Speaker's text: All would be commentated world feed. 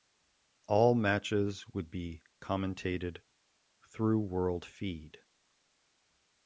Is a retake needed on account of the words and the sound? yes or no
yes